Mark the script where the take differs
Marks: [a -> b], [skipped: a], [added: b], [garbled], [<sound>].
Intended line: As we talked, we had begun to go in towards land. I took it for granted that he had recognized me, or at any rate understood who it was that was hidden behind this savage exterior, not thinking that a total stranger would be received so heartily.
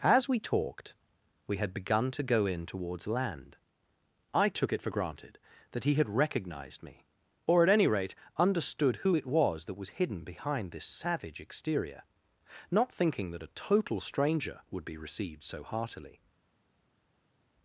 As we talked, we had begun to go in towards land. I took it for granted that he had recognized me, or at any rate understood who it was that was hidden behind this savage exterior, not thinking that a total stranger would be received so heartily.